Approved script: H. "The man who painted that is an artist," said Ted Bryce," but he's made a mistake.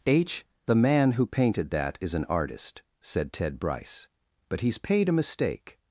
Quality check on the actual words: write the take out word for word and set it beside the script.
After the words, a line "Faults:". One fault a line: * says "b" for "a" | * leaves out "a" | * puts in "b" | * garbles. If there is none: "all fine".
H. "The man who painted that is an artist," said Ted Bryce," but he's paid a mistake.
Faults:
* says "paid" for "made"